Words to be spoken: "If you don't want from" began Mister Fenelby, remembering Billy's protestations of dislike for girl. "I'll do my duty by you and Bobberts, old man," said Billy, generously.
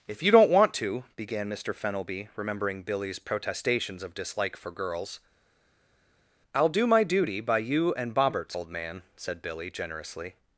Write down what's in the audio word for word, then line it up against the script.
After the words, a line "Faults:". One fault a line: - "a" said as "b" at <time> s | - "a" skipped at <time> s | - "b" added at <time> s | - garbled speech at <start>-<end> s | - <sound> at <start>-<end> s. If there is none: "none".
"If you don't want to" began Mister Fenelby, remembering Billy's protestations of dislike for girls. "I'll do my duty by you and Bobberts, old man," said Billy, generously.
Faults:
- "from" said as "to" at 0.8 s
- "girl" said as "girls" at 4.7 s